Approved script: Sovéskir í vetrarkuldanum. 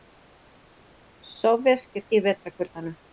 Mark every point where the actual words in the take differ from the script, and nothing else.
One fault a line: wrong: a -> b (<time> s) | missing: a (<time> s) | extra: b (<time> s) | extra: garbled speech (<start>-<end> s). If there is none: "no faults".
no faults